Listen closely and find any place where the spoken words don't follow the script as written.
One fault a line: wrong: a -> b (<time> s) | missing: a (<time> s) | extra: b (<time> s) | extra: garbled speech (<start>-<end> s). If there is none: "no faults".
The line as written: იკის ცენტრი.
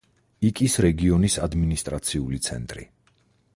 extra: რეგიონის ადმინისტრაციული (0.8 s)